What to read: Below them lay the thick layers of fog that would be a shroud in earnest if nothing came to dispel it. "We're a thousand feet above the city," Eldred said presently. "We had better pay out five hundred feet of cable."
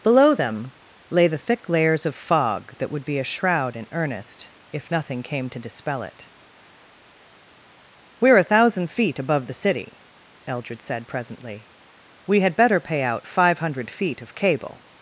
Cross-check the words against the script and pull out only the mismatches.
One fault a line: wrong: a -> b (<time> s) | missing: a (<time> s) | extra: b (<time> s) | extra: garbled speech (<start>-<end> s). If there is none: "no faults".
no faults